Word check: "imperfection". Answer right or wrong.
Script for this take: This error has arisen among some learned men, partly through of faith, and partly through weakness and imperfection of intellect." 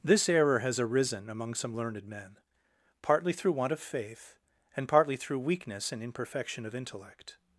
right